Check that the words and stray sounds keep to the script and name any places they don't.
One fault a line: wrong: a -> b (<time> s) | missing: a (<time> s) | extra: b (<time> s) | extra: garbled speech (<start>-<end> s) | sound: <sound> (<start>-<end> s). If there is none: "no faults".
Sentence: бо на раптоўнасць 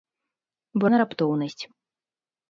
no faults